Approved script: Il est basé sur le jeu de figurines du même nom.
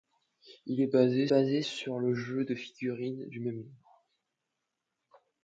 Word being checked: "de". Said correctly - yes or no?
yes